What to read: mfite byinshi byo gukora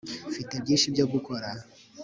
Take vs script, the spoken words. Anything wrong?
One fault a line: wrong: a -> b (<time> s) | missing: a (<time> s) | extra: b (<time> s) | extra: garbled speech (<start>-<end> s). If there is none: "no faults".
no faults